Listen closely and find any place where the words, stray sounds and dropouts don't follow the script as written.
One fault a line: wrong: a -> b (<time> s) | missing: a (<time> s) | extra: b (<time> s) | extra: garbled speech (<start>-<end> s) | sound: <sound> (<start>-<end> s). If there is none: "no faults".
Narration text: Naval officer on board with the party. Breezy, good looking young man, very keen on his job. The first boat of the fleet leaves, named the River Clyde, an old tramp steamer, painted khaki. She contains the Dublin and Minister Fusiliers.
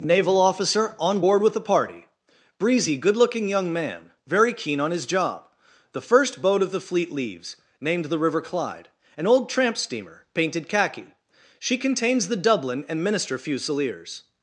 no faults